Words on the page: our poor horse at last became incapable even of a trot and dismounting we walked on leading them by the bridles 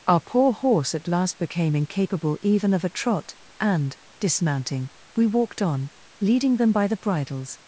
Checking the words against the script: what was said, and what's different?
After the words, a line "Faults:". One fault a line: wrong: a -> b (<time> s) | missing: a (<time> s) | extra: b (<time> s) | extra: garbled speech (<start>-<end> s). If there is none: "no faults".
our poor horse at last became incapable even of a trot and dismounting we walked on leading them by the bridles
Faults:
no faults